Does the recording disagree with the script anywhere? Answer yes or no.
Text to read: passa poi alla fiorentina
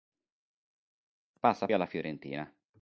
yes